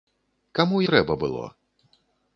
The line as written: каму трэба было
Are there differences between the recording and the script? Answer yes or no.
no